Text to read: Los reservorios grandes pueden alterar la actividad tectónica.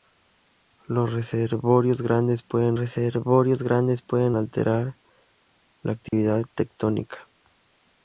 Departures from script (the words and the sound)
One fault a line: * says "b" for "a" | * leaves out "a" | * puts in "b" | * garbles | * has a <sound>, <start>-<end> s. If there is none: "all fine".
* puts in "reservorios grandes pueden"
* has a dropout, 6.1-6.1 s